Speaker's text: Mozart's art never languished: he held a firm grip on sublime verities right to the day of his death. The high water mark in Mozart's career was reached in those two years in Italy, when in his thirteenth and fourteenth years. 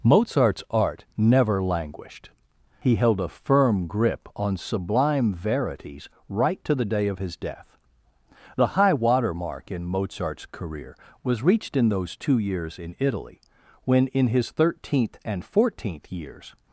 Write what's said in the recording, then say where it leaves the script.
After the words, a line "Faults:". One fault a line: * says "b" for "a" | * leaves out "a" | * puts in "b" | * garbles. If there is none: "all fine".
Mozart's art never languished: he held a firm grip on sublime verities right to the day of his death. The high water mark in Mozart's career was reached in those two years in Italy, when in his thirteenth and fourteenth years.
Faults:
all fine